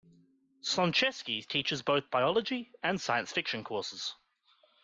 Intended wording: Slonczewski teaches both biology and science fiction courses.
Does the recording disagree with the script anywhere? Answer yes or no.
no